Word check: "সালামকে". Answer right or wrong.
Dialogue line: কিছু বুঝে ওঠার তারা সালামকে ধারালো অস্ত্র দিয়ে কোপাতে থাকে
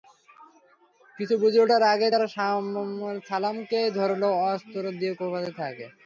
right